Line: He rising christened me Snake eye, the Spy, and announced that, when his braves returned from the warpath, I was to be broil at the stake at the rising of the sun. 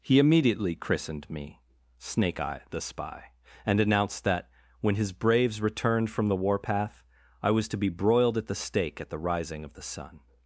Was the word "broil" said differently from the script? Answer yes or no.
yes